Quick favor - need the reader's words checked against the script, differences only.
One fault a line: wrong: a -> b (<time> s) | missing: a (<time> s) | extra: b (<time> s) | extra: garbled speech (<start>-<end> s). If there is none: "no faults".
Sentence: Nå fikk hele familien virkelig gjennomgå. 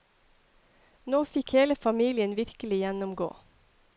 no faults